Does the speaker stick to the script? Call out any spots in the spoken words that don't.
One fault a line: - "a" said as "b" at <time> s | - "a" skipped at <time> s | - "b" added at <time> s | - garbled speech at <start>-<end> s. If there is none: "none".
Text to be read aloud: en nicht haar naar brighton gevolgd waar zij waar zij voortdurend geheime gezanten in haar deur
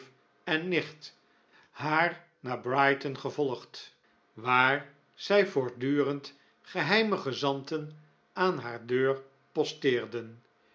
- "waar zij" skipped at 5.5 s
- "in" said as "aan" at 8.3 s